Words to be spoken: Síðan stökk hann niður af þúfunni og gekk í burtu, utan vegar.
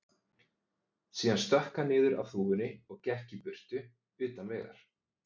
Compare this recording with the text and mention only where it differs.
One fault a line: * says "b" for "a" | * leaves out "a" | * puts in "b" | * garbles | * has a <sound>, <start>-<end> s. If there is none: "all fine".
all fine